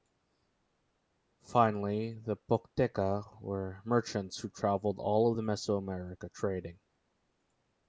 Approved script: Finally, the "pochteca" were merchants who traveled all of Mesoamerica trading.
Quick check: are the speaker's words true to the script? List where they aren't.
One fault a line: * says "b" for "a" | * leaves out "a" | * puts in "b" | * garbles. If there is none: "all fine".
all fine